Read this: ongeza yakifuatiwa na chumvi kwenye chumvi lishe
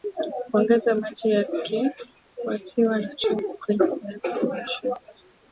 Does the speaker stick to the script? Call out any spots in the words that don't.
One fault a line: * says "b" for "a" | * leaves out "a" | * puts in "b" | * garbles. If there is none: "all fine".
* puts in "maji"
* says "viazi" for "chumvi"